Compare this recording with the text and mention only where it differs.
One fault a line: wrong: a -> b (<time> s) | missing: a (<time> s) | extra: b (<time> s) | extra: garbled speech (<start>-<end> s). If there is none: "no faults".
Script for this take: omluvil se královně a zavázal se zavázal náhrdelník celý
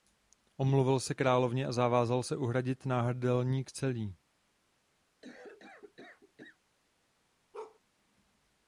wrong: zavázal -> uhradit (2.4 s)